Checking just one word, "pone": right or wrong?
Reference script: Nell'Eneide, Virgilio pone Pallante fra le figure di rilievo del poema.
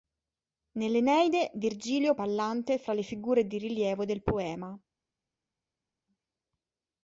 wrong